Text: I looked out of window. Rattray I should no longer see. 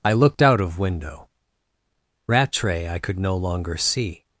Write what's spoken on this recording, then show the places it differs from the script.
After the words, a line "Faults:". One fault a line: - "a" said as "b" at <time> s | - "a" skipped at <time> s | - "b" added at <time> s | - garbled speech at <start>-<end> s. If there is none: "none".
I looked out of window. Rattray I could no longer see.
Faults:
- "should" said as "could" at 3.0 s